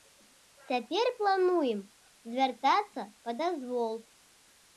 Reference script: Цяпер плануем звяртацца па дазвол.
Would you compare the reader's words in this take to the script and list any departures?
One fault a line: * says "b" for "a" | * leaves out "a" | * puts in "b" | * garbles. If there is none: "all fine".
all fine